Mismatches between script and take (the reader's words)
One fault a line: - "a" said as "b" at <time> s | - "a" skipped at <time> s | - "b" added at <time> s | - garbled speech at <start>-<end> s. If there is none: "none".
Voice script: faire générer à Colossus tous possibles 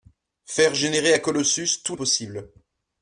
none